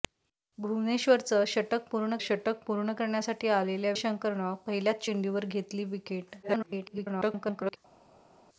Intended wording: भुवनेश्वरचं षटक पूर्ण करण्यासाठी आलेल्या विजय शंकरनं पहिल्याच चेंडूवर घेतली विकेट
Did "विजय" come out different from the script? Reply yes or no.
yes